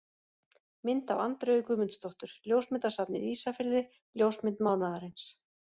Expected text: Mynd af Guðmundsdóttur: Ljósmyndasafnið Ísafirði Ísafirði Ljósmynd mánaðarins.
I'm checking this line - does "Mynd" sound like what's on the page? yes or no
yes